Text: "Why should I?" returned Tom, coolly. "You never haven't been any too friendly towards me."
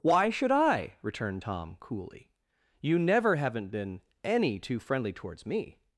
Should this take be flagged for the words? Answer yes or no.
no